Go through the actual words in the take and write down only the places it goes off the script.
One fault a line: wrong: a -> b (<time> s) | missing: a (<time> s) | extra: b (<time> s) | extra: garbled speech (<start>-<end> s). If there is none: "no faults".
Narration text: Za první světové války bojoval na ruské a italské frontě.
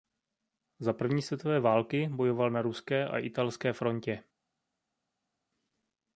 no faults